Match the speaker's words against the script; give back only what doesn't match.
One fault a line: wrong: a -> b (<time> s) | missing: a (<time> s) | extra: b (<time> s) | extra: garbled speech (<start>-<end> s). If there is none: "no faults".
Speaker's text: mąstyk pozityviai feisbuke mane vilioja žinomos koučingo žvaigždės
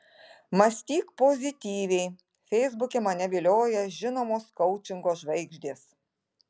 no faults